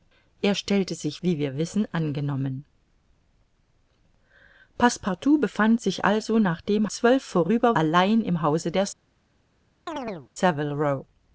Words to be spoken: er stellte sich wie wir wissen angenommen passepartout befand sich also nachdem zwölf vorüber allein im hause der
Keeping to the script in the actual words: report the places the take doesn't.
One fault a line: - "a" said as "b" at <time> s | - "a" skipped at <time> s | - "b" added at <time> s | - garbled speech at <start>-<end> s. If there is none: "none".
none